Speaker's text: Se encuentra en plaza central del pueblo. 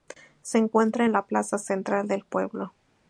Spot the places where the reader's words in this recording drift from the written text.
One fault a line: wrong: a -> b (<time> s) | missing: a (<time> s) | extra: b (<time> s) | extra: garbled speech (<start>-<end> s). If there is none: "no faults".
extra: la (1.1 s)